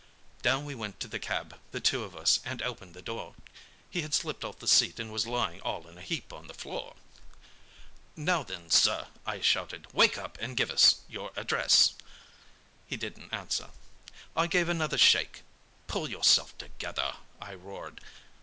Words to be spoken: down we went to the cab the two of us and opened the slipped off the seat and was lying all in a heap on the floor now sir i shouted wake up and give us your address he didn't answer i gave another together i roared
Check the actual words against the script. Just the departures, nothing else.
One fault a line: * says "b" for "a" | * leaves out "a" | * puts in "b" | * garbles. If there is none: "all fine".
* puts in "door he had"
* puts in "then"
* puts in "shake pull yourself"